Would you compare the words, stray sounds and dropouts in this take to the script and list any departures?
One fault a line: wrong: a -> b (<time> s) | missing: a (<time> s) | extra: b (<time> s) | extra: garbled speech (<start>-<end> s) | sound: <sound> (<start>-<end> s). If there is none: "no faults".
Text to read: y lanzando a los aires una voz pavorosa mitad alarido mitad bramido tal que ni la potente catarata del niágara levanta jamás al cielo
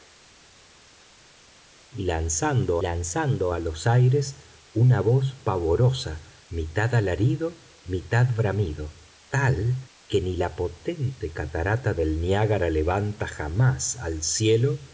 extra: lanzando (2.8 s)